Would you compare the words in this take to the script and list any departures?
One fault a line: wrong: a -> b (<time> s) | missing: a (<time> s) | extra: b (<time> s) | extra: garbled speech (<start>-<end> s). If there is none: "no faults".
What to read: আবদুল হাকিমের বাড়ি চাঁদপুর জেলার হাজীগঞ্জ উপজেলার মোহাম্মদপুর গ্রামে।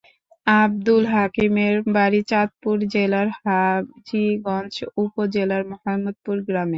no faults